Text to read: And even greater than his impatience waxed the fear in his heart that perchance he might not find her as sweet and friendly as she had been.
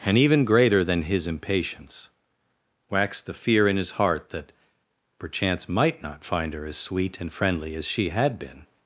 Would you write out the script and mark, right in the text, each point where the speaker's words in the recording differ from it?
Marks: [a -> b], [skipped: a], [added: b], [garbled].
And even greater than his impatience waxed the fear in his heart that perchance [skipped: he] might not find her as sweet and friendly as she had been.